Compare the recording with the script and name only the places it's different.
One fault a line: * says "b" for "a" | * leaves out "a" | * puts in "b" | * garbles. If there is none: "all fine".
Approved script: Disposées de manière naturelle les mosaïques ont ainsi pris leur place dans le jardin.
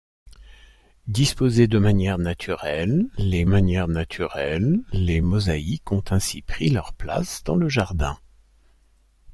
* puts in "manière naturelle les"